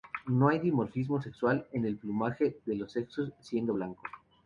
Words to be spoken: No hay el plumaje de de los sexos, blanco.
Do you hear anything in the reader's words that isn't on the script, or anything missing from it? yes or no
yes